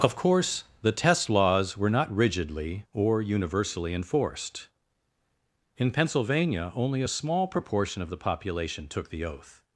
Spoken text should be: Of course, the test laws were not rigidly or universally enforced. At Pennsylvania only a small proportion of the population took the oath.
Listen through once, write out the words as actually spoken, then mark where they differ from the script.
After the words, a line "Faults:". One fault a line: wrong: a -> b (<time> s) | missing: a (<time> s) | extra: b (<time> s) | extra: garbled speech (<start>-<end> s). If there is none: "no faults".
Of course, the test laws were not rigidly or universally enforced. In Pennsylvania only a small proportion of the population took the oath.
Faults:
wrong: At -> In (5.8 s)